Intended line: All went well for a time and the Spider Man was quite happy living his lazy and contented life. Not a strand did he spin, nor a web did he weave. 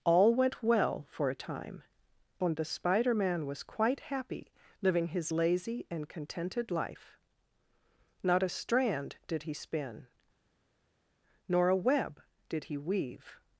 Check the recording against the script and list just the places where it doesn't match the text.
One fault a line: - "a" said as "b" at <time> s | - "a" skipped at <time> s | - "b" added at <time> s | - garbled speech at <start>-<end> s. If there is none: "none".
none